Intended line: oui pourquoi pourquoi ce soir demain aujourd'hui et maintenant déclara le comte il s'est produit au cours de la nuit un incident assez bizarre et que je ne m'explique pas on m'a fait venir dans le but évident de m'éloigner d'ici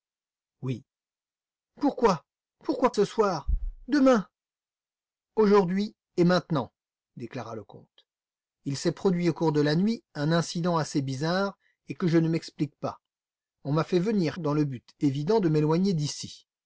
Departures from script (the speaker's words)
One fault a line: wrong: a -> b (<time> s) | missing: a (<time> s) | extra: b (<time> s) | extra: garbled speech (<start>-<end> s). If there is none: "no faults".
no faults